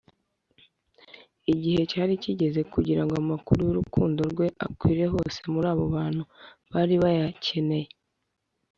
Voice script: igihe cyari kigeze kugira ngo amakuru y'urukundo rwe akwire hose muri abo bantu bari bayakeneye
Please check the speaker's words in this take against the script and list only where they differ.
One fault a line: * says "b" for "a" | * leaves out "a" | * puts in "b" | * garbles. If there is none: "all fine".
all fine